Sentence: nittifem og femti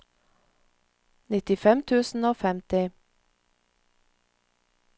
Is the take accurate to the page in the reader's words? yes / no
no